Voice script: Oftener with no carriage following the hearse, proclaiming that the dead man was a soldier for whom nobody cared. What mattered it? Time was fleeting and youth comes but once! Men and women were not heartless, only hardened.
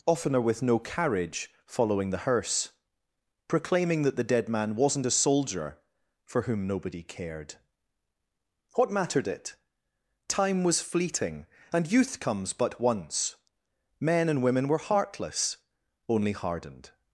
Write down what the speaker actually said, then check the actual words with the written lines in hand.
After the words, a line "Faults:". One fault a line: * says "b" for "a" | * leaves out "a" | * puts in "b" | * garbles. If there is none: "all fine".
Oftener with no carriage following the hearse, proclaiming that the dead man wasn't a soldier for whom nobody cared. What mattered it? Time was fleeting and youth comes but once! Men and women were heartless, only hardened.
Faults:
* says "wasn't" for "was"
* leaves out "not"